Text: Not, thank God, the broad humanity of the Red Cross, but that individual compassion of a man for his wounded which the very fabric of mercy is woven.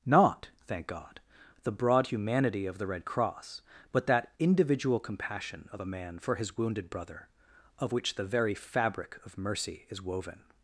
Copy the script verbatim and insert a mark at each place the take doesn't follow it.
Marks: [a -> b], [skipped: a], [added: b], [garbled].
Not, thank God, the broad humanity of the Red Cross, but that individual compassion of a man for his wounded [added: brother of] which the very fabric of mercy is woven.